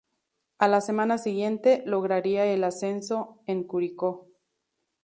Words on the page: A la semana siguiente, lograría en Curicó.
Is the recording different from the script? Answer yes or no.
yes